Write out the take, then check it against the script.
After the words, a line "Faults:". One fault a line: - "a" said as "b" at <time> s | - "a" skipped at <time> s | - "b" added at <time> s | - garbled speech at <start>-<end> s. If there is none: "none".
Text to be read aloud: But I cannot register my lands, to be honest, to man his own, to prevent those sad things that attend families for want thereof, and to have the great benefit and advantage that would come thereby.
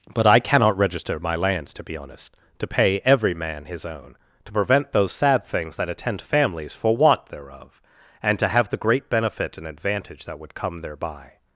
But I cannot register my lands, to be honest, to pay every man his own, to prevent those sad things that attend families for want thereof, and to have the great benefit and advantage that would come thereby.
Faults:
- "pay every" added at 2.7 s